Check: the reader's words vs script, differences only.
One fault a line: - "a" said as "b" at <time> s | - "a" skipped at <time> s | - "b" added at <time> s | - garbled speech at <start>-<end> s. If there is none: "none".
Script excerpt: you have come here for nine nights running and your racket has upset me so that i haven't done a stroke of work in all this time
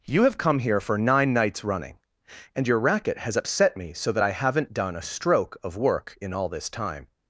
none